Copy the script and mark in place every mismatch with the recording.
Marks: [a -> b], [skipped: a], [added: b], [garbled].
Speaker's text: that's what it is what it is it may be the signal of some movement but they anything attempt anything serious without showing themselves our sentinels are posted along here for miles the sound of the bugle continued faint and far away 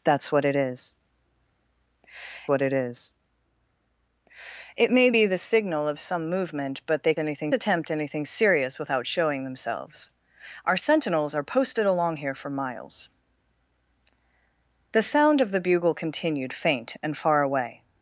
that's what it is what it is it may be the signal of some movement but they anything attempt anything serious without showing themselves our sentinels are posted along here for miles the sound of the bugle continued faint and far away